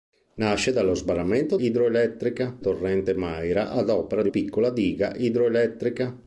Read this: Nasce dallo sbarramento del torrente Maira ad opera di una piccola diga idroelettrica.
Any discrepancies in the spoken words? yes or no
yes